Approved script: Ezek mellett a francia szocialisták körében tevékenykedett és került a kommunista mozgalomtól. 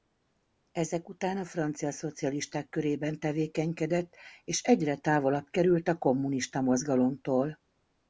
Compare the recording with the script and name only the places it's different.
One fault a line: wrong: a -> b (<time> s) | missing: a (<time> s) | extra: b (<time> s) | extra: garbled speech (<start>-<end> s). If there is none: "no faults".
wrong: mellett -> után (1.1 s)
extra: egyre távolabb (4.6 s)